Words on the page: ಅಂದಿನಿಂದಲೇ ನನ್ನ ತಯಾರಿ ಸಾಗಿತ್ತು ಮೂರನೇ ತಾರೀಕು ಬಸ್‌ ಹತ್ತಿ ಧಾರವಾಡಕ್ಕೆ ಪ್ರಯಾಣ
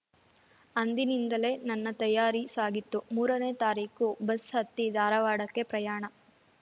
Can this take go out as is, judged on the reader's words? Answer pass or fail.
pass